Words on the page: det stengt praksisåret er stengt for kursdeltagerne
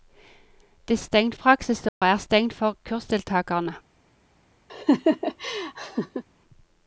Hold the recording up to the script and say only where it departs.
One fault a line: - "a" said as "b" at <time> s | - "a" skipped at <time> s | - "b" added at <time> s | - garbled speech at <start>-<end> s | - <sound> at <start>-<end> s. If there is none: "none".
- dropout at 1.9-2.0 s
- laugh at 4.7-6.2 s